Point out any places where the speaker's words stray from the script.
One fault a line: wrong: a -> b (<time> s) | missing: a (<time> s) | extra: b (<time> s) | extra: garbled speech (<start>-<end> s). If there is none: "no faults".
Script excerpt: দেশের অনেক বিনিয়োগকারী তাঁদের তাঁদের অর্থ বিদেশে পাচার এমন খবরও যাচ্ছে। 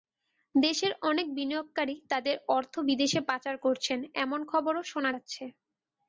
missing: তাঁদের (2.4 s)
extra: করছেন (3.6 s)
extra: শোনা (4.9 s)